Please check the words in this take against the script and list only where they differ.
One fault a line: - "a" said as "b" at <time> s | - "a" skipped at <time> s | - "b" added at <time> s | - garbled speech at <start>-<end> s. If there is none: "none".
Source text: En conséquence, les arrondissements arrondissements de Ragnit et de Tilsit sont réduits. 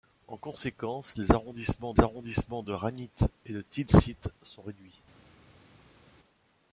none